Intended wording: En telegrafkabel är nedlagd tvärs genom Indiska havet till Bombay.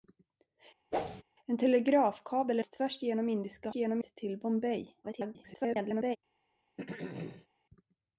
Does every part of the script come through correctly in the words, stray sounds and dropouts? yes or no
no